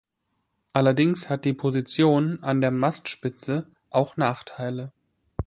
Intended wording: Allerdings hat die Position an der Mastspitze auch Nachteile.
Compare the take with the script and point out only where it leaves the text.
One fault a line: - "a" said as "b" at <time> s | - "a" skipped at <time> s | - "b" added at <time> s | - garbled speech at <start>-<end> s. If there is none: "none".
none